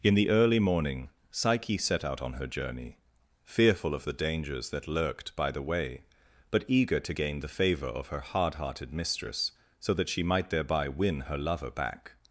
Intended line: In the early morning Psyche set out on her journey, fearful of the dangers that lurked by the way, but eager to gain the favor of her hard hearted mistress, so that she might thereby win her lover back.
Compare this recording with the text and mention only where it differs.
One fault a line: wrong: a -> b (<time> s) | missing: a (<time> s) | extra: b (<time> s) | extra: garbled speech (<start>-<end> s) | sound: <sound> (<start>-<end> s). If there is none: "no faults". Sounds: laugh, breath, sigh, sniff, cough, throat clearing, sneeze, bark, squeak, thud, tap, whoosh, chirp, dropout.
no faults